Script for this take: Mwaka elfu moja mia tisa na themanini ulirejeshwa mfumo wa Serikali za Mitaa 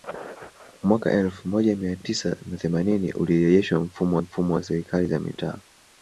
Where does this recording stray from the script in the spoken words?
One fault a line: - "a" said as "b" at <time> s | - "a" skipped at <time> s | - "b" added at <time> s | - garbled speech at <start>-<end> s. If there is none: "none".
- "mfumo" added at 4.2 s